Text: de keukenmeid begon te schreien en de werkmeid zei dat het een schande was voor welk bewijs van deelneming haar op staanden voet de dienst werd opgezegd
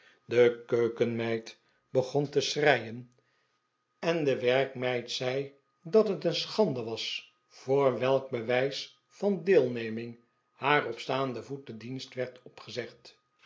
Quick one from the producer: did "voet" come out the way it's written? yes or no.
yes